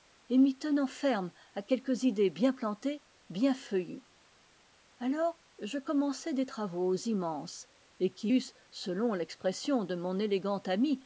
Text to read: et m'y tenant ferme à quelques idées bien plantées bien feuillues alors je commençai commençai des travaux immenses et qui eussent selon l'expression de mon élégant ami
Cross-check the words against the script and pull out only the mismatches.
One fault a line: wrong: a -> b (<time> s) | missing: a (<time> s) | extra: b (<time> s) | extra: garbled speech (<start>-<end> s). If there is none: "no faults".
missing: commençai (6.3 s)